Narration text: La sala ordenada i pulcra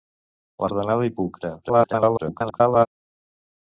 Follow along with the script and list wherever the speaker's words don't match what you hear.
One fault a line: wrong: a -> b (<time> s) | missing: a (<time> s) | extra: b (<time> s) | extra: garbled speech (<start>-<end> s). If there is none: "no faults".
missing: sala (0.7 s)
extra: garbled speech (1.6-2.9 s)